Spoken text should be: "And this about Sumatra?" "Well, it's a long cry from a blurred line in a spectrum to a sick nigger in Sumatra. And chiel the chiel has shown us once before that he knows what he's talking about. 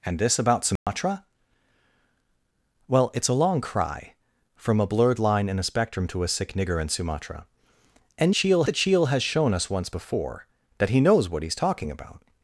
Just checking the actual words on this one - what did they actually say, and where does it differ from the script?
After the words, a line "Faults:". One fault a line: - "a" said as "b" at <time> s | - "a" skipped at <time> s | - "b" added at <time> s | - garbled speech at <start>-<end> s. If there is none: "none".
"And this about Sumatra?" "Well, it's a long cry from a blurred line in a spectrum to a sick nigger in Sumatra. And chiel the chiel has shown us once before that he knows what he's talking about.
Faults:
none